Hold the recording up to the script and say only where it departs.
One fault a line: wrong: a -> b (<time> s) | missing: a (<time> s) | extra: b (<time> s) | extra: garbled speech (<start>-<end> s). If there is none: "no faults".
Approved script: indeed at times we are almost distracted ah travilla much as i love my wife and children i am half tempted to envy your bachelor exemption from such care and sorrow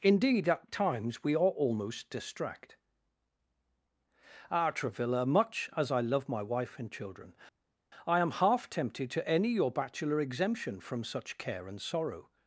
wrong: distracted -> distract (2.1 s)
wrong: envy -> any (9.3 s)